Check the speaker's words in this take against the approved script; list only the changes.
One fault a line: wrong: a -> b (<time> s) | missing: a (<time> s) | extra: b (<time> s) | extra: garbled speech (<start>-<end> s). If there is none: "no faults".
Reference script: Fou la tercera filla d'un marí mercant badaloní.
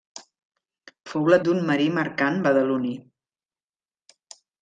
missing: tercera filla (1.4 s)